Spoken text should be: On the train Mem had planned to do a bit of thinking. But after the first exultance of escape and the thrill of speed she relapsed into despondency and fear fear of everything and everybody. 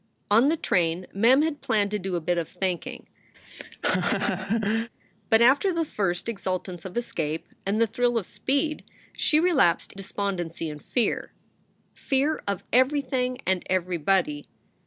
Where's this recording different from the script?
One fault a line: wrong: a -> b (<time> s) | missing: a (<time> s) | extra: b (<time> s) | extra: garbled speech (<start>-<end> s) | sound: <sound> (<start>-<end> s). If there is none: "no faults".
sound: laugh (3.3-4.9 s)
missing: into (9.9 s)